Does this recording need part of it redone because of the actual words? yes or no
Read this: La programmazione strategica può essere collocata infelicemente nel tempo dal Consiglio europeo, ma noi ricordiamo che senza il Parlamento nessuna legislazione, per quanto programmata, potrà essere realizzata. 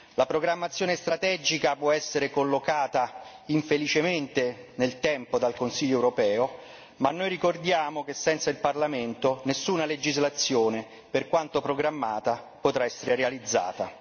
no